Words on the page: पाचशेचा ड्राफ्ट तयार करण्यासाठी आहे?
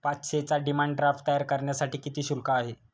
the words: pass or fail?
fail